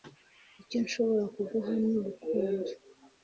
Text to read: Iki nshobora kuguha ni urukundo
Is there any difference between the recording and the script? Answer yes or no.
yes